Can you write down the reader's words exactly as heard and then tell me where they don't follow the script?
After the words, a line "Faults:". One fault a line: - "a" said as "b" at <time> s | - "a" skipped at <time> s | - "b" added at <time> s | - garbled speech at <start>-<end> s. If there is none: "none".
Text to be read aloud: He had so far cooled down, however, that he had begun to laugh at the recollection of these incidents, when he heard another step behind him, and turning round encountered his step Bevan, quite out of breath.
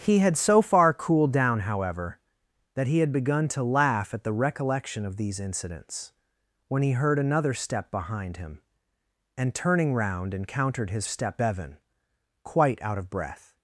He had so far cooled down, however, that he had begun to laugh at the recollection of these incidents, when he heard another step behind him, and turning round encountered his step Bevan, quite out of breath.
Faults:
none